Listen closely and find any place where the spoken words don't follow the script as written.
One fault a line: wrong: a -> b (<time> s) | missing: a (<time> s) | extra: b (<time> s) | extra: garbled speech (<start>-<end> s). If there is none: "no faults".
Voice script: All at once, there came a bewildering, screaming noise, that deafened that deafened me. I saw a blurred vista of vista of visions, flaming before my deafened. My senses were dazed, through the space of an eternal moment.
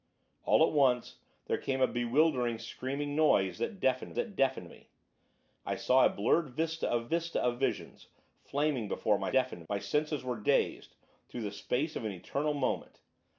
no faults